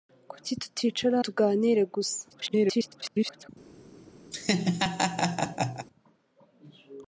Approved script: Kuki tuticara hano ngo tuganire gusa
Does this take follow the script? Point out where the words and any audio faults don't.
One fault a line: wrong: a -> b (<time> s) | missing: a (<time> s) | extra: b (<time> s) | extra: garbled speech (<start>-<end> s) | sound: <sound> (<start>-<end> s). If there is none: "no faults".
missing: hano ngo (1.1 s)
extra: garbled speech (2.3-3.5 s)
sound: laugh (4.3-5.9 s)